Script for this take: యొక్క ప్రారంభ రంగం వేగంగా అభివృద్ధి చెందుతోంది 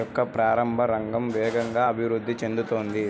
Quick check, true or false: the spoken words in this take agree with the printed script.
true